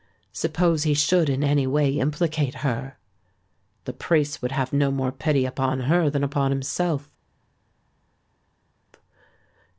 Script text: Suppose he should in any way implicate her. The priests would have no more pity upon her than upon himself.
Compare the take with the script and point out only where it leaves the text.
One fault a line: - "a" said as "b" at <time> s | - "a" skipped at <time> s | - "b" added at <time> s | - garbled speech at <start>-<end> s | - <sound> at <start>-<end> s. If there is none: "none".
none